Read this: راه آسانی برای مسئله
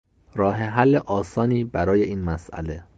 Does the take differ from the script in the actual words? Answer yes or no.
yes